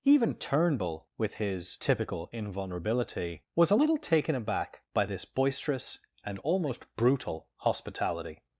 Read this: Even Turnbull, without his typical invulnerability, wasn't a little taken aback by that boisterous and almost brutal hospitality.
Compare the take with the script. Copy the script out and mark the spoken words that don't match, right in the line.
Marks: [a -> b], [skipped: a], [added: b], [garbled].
Even Turnbull, [without -> with] his typical invulnerability, [wasn't -> was] a little taken aback by [that -> this] boisterous and almost brutal hospitality.